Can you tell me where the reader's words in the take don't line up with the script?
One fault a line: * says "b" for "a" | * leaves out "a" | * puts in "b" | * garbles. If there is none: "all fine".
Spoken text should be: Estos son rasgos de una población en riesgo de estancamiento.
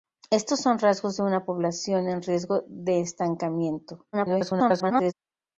* garbles